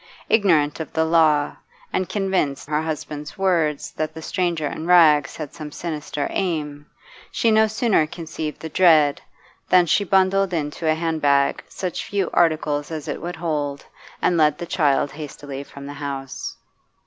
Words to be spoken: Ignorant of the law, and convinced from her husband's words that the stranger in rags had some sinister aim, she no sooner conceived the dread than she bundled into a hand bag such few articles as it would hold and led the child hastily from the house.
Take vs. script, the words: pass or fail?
fail